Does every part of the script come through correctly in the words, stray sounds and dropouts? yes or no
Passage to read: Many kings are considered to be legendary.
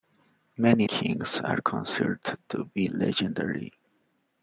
yes